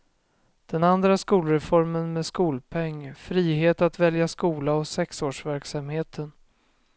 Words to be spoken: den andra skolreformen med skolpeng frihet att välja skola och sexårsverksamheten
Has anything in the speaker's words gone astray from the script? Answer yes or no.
no